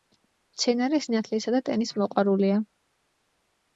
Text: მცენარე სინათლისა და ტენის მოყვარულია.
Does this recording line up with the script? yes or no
yes